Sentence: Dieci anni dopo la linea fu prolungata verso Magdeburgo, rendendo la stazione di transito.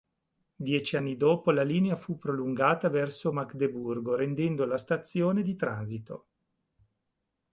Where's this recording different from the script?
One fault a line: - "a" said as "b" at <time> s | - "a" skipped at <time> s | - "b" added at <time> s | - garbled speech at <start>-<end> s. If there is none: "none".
none